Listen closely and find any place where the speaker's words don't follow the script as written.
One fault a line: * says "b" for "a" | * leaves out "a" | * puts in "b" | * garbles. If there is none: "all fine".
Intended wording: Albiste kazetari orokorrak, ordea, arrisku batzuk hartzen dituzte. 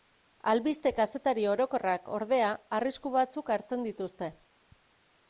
all fine